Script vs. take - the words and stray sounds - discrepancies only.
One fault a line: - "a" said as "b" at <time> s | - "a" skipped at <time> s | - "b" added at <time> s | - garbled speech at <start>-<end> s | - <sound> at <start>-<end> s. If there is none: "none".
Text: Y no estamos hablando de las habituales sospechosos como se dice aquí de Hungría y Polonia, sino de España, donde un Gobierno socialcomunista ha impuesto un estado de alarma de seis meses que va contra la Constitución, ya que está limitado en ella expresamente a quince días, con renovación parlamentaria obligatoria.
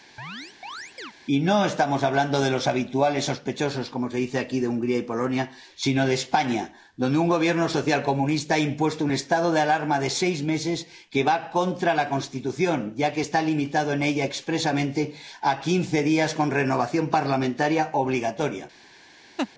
- chirp at 0.2-1.1 s
- "las" said as "los" at 2.5 s
- laugh at 19.4-19.5 s